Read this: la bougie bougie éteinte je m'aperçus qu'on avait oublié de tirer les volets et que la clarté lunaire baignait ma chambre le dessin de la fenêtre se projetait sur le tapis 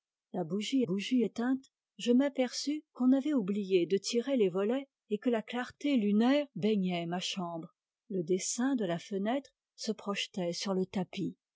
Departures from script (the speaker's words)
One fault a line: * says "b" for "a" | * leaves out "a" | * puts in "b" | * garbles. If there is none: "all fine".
all fine